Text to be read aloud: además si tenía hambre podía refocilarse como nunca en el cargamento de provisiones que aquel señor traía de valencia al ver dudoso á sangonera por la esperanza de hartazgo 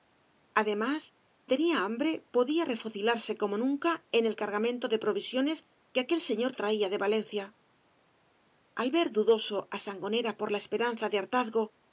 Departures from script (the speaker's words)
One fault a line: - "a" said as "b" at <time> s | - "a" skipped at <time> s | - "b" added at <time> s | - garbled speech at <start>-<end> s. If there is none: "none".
- "si" skipped at 1.1 s